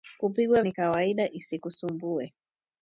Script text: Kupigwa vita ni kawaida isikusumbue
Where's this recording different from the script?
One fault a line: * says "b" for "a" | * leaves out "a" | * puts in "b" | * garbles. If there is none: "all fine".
* leaves out "vita"